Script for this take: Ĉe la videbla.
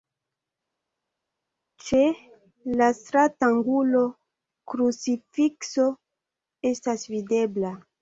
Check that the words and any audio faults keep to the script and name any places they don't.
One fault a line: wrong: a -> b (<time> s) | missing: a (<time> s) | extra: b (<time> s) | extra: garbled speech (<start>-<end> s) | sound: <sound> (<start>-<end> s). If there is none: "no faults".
extra: stratangulo krucifikso estas (3.0 s)